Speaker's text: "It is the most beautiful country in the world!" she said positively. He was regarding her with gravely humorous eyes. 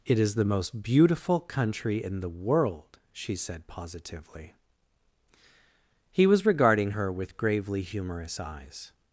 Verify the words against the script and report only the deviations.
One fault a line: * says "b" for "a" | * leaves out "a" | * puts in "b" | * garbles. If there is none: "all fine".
all fine